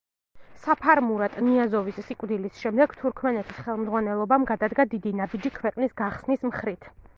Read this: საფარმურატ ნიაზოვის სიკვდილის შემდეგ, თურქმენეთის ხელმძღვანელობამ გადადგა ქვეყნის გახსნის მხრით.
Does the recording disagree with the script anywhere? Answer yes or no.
yes